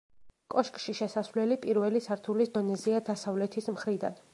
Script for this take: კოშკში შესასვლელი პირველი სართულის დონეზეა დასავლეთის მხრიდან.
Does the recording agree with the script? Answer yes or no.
yes